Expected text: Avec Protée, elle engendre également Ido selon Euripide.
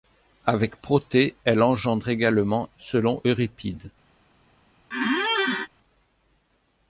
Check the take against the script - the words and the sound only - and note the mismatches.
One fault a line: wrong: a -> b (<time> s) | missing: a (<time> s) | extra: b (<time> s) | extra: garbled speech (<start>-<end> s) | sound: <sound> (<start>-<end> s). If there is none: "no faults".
missing: Ido (2.7 s)
sound: squeak (4.9-5.7 s)